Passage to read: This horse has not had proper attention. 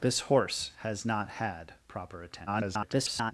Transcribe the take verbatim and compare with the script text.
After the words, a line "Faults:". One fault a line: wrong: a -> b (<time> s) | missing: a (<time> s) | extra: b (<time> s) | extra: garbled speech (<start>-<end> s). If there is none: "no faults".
This horse has not had proper attention. [garbled]
Faults:
extra: garbled speech (2.5-3.3 s)